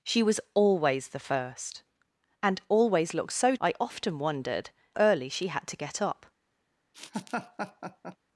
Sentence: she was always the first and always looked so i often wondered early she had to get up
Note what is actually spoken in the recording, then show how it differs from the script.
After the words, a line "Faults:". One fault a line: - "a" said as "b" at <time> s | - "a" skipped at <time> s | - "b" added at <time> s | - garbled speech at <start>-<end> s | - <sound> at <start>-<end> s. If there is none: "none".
she was always the first and always looked so i often wondered early she had to get up
Faults:
- laugh at 6.9-8.2 s